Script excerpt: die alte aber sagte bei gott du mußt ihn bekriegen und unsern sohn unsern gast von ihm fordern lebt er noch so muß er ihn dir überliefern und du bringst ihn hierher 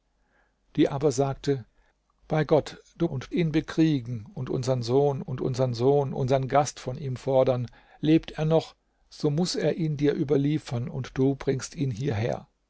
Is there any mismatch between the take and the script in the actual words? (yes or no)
yes